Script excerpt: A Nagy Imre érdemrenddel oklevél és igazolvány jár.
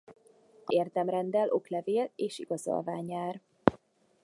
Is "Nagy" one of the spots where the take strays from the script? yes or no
yes